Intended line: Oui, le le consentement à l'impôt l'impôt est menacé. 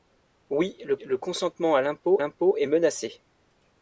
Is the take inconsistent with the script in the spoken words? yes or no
no